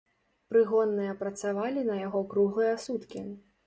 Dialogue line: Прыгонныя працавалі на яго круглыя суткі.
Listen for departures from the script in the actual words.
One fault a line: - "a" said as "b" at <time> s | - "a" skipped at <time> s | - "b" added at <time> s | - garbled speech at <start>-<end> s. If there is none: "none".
none